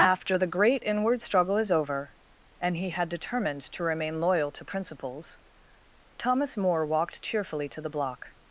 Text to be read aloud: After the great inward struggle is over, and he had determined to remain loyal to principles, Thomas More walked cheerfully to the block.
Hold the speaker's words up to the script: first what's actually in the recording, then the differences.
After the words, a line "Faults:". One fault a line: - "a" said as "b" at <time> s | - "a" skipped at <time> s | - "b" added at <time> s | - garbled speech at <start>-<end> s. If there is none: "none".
After the great inward struggle is over, and he had determined to remain loyal to principles, Thomas More walked cheerfully to the block.
Faults:
none